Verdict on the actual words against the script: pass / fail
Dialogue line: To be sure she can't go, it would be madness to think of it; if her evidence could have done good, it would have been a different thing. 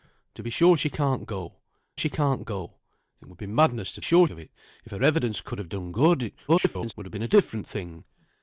fail